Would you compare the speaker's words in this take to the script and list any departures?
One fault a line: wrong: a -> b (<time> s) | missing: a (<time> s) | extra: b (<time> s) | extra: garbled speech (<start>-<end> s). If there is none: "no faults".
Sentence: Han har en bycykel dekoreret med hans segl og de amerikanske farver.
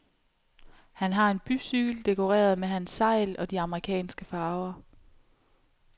no faults